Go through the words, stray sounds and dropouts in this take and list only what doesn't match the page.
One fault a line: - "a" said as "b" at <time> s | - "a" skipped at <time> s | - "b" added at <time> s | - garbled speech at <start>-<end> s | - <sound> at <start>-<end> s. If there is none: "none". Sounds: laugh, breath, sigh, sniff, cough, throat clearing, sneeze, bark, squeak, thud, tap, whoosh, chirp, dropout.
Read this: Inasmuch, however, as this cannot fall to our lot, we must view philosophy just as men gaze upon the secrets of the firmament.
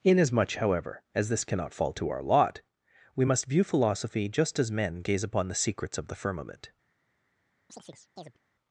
- chirp at 7.7-8.4 s